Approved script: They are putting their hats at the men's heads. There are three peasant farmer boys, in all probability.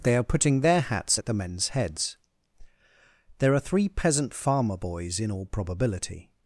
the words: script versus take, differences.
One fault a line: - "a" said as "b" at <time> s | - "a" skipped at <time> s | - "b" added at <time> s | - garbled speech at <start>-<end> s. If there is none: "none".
none